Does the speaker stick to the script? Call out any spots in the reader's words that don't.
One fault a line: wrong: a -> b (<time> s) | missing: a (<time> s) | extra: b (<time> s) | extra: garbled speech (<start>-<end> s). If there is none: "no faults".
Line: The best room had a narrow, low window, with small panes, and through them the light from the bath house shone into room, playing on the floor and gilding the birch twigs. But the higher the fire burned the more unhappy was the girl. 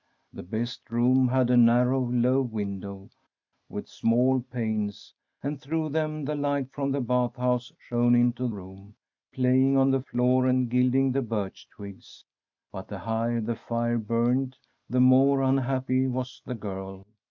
no faults